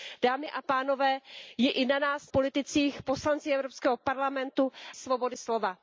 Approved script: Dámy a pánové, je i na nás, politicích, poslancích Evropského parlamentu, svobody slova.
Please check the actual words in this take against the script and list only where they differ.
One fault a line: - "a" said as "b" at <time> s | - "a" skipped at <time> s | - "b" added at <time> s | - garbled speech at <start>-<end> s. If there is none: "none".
none